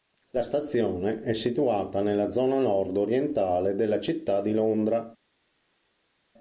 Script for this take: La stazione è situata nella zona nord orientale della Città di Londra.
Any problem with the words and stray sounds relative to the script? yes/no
no